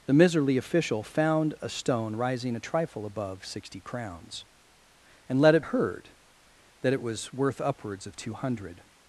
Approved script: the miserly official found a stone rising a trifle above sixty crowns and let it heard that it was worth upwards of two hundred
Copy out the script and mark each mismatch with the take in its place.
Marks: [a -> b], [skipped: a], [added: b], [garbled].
the miserly official found a stone rising a trifle above sixty crowns and let it heard that it was worth upwards of two hundred